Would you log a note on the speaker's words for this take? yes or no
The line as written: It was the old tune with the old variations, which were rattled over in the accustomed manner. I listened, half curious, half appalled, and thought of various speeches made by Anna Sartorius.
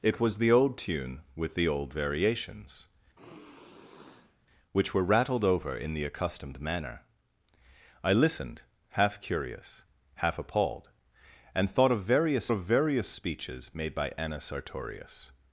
yes